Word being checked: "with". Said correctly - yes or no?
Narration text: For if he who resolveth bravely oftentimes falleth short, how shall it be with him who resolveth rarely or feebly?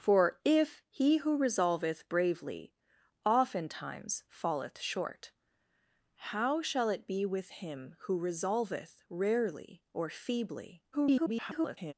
yes